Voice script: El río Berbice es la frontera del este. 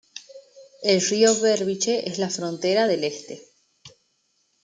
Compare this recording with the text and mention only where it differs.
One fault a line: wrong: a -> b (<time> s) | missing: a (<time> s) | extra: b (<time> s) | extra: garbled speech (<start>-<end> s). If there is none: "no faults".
no faults